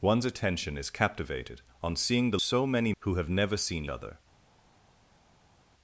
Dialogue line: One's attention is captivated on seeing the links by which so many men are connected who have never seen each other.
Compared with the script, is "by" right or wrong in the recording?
wrong